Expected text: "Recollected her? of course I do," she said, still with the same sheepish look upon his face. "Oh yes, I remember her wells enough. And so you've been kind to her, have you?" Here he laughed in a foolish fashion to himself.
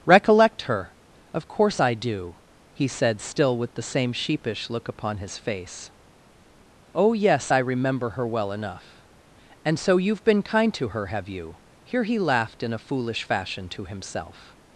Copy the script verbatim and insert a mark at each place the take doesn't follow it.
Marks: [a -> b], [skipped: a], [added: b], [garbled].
["Recollected -> Recollect] her? of course I do," [she -> he] said, still with the same sheepish look upon his face. "Oh yes, I remember her [wells -> well] enough. And so you've been kind to her, have you?" Here he laughed in a foolish fashion to himself.